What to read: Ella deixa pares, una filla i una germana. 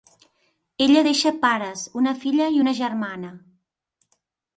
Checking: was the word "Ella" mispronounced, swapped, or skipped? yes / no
no